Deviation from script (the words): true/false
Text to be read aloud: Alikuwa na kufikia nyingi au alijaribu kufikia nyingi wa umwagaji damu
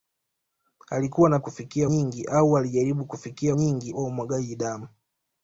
false